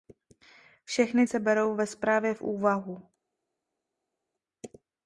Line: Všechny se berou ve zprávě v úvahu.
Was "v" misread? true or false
false